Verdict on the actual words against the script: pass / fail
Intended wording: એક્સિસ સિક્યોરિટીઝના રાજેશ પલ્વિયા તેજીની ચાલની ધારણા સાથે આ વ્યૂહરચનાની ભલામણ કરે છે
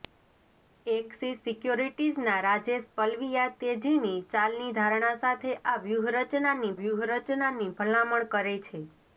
fail